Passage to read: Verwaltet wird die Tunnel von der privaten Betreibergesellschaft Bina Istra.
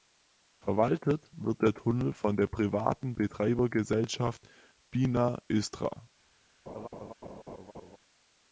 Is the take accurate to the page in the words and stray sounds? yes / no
no